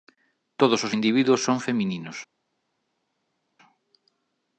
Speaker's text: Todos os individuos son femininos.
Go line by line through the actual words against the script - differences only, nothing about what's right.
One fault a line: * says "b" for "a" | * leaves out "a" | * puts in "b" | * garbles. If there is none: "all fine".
all fine